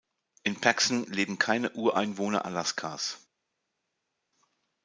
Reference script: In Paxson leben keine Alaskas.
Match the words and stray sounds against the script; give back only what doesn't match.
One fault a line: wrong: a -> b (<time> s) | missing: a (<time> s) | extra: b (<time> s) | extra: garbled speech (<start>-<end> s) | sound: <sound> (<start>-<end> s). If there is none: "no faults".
extra: Ureinwohner (1.7 s)